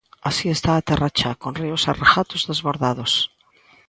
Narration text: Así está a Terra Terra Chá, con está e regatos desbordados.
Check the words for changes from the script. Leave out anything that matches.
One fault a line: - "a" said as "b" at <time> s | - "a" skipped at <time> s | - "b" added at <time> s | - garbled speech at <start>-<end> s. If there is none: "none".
- "Terra" skipped at 1.1 s
- "está" said as "ríos" at 1.6 s